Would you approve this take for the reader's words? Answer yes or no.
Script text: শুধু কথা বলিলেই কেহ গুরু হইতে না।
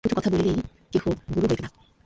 yes